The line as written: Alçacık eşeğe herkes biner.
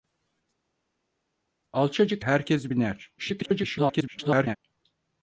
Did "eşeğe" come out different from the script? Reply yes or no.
yes